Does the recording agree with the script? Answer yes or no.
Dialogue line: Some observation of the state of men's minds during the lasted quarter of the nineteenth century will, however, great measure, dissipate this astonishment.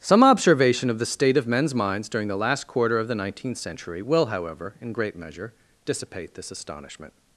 no